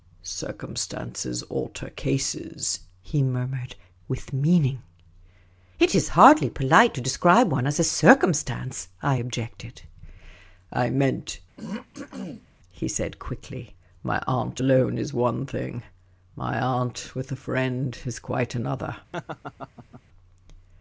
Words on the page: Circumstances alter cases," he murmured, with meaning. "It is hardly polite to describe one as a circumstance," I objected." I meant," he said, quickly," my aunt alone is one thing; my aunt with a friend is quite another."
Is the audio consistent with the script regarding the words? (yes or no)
yes